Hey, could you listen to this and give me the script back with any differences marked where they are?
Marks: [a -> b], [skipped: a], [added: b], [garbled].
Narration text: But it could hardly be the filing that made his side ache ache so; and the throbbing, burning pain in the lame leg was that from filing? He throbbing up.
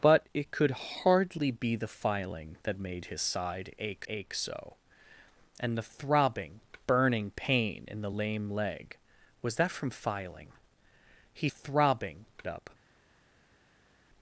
But it could hardly be the filing that made his side ache ache so; and the throbbing, burning pain in the lame leg was that from filing? He throbbing up.